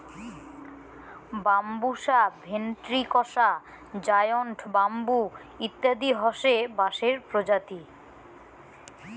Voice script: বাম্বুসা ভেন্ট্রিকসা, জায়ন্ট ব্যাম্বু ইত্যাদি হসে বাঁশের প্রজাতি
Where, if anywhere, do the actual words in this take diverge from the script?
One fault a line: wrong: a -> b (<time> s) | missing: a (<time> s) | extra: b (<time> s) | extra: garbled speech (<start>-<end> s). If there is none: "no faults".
no faults